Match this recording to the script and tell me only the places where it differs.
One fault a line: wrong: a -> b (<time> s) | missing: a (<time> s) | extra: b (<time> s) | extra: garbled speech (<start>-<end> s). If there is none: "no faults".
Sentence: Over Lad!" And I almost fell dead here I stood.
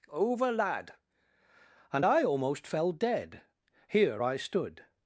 no faults